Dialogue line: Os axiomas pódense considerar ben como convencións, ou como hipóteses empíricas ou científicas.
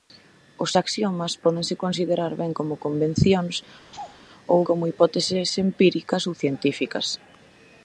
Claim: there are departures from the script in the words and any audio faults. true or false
true